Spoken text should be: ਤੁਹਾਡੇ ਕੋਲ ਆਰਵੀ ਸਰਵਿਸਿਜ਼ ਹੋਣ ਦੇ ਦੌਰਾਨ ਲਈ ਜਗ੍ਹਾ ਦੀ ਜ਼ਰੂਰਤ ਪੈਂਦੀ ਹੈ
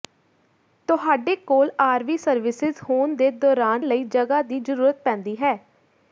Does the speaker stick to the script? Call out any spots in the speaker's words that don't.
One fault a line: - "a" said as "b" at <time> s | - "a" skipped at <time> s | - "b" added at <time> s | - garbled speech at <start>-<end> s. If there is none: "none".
none